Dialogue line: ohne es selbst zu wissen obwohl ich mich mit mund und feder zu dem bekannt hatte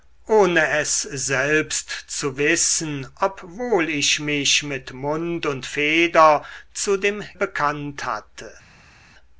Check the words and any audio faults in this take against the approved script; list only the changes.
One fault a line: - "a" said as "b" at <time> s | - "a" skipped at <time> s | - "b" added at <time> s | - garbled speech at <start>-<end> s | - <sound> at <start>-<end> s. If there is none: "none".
none